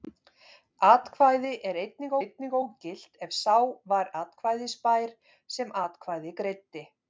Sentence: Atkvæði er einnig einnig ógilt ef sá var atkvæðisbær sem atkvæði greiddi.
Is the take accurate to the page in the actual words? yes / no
yes